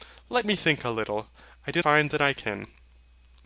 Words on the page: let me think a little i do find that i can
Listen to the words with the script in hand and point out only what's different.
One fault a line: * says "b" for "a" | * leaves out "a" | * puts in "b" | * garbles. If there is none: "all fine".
all fine